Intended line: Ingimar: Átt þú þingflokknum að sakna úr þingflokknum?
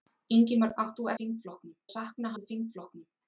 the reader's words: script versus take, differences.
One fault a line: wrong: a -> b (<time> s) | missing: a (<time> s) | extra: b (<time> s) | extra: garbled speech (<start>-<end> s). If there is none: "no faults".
no faults